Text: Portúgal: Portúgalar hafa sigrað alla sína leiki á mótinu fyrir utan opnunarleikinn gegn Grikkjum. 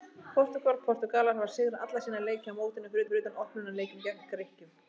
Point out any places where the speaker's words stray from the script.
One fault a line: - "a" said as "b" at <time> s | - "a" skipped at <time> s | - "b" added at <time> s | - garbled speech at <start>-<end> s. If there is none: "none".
- "fyrir" added at 3.1 s